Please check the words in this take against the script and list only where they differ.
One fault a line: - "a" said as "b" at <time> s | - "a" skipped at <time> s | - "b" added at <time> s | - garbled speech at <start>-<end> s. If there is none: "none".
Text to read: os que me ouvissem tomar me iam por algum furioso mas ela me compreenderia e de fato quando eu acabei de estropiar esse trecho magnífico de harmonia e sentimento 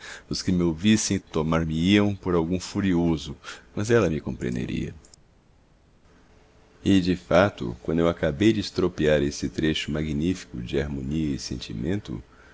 none